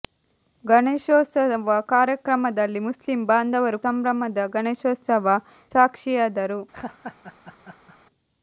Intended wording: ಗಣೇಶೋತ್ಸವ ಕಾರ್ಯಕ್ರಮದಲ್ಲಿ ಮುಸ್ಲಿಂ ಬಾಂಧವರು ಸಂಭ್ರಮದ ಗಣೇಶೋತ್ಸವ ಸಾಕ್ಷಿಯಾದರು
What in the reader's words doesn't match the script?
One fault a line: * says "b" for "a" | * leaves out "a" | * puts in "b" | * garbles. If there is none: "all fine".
all fine